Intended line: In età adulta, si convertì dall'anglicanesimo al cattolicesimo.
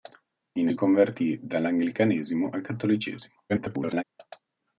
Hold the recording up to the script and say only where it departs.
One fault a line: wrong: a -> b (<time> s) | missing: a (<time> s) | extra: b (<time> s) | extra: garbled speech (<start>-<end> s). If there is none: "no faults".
missing: età adulta si (0.7 s)
extra: garbled speech (3.5-4.0 s)